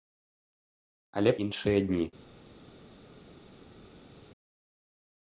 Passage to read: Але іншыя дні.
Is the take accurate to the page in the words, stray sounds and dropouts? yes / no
yes